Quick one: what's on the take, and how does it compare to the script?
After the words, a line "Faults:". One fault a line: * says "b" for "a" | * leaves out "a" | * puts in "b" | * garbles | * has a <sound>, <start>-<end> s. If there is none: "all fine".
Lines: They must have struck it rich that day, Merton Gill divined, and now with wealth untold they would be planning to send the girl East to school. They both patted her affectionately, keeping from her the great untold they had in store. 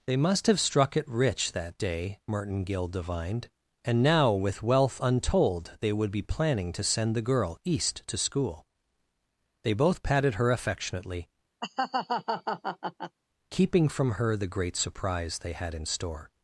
They must have struck it rich that day, Merton Gill divined, and now with wealth untold they would be planning to send the girl East to school. They both patted her affectionately, keeping from her the great surprise they had in store.
Faults:
* has a laugh, 11.6-13.2 s
* says "surprise" for "untold"